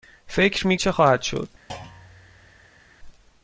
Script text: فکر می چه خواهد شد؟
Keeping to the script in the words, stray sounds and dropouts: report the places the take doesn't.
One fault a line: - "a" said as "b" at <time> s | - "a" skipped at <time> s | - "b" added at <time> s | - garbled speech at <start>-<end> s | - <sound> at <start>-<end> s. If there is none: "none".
- thud at 1.7-2.8 s